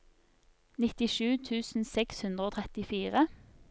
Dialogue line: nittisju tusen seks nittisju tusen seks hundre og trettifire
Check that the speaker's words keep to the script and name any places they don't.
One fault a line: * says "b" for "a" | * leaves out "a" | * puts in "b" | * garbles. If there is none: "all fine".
* leaves out "nittisju tusen seks"